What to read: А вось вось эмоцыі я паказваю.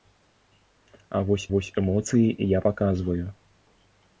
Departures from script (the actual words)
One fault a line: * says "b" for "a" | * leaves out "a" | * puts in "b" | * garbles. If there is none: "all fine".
all fine